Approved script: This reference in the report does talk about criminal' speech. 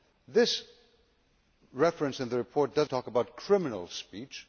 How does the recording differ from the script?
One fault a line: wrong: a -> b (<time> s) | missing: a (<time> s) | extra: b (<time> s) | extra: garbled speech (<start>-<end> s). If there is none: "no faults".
no faults